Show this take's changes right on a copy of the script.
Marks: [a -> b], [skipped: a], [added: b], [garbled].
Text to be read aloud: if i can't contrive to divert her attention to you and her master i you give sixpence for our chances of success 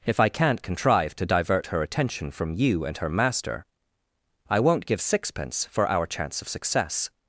if i can't contrive to divert her attention [to -> from] you and her master i [you -> won't] give sixpence for our [chances -> chance] of success